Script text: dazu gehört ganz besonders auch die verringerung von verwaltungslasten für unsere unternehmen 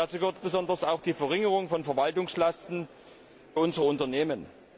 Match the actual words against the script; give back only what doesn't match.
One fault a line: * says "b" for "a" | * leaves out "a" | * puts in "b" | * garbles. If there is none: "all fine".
* leaves out "ganz"
* leaves out "für"